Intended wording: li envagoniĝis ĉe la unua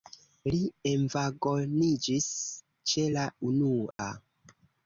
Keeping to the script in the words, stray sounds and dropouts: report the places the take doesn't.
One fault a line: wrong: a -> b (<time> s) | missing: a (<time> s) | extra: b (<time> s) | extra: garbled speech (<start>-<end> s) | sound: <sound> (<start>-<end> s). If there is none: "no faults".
sound: dropout (3.9-4.0 s)